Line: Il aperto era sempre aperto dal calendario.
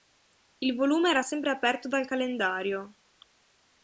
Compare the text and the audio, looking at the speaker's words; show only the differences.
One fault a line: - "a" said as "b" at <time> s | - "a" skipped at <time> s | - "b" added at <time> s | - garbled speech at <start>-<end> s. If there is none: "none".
- "aperto" said as "volume" at 0.8 s